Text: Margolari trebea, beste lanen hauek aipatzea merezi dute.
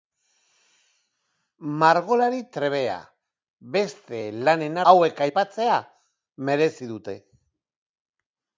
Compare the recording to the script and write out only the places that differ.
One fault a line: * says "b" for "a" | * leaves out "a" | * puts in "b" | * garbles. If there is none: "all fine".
all fine